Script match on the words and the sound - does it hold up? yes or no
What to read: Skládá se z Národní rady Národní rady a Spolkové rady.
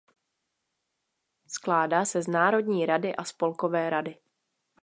no